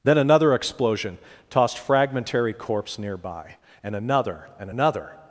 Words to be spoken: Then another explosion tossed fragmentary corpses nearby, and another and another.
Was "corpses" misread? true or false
true